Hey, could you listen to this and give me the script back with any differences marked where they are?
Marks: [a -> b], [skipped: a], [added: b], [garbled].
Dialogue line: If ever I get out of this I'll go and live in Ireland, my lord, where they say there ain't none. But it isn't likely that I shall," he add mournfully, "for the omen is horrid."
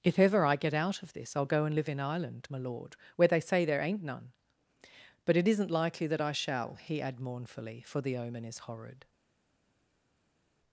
If ever I get out of this I'll go and live in Ireland, my lord, where they say there ain't none. But it isn't likely that I shall," he add mournfully, "for the omen is horrid."